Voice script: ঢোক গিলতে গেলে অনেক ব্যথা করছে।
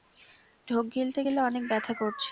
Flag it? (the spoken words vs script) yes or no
no